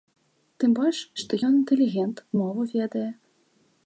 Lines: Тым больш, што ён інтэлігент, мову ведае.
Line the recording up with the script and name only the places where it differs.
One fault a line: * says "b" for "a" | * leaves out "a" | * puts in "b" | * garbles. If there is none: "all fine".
all fine